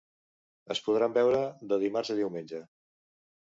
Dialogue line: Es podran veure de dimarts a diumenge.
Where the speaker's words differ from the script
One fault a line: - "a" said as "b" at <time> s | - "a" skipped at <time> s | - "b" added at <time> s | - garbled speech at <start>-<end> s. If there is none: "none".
none